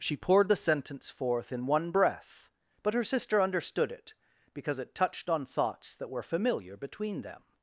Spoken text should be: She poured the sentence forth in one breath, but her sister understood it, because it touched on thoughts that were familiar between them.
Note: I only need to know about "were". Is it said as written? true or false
true